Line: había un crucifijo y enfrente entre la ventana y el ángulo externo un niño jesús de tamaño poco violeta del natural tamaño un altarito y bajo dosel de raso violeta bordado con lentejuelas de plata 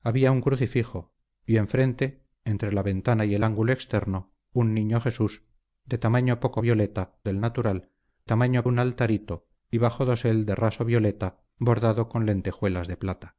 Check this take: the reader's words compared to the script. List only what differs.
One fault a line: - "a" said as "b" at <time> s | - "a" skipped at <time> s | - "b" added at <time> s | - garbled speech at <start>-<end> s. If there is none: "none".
none